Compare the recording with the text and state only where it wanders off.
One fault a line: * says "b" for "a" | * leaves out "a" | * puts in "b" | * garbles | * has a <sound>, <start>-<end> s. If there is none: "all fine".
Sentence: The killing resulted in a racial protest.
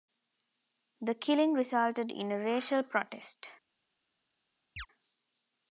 * has a chirp, 4.8-4.9 s